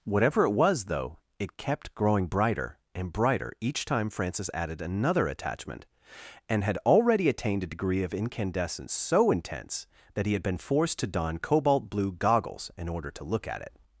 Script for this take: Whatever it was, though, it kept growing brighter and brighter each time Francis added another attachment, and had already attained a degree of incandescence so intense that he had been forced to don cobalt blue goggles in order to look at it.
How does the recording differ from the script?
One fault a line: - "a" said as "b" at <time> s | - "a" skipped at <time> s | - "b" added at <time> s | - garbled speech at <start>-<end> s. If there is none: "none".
none